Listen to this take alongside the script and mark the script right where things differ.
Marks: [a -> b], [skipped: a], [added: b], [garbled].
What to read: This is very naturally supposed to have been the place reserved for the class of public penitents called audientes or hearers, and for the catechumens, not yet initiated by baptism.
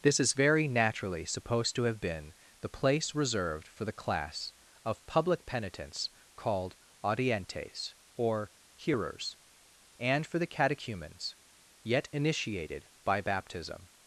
This is very naturally supposed to have been the place reserved for the class of public penitents called audientes or hearers, and for the catechumens, [skipped: not] yet initiated by baptism.